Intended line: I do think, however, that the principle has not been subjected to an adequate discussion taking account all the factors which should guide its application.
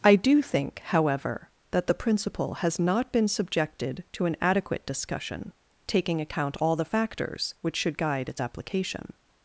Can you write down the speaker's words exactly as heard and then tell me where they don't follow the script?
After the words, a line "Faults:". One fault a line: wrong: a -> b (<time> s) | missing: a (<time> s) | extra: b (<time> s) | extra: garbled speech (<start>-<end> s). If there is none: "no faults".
I do think, however, that the principle has not been subjected to an adequate discussion taking account all the factors which should guide its application.
Faults:
no faults